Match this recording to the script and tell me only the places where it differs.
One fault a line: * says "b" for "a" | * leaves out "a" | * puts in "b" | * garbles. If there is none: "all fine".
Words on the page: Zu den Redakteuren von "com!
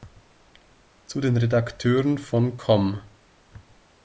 all fine